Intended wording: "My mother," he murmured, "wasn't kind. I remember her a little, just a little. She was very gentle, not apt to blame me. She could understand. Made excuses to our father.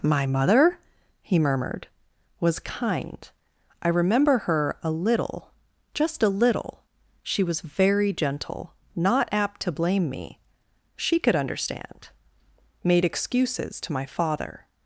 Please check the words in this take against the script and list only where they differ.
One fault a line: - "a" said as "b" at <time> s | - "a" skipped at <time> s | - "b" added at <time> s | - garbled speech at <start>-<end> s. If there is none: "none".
- "wasn't" said as "was" at 2.4 s
- "our" said as "my" at 13.9 s